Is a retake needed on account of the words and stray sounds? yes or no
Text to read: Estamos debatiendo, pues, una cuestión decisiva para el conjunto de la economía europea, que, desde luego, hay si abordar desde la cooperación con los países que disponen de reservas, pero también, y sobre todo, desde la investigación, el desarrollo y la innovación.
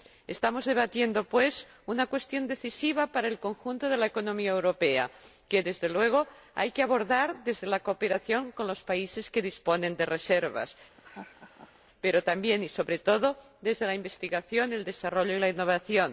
yes